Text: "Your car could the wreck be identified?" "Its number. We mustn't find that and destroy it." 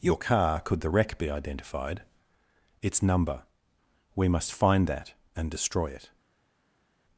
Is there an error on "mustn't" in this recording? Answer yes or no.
yes